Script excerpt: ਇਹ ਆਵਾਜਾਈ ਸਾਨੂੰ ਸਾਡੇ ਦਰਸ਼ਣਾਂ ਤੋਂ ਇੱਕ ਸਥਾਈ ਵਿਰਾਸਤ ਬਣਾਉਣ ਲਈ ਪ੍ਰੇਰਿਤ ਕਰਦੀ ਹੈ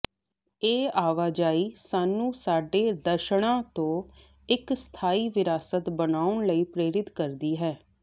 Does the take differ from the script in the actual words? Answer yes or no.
no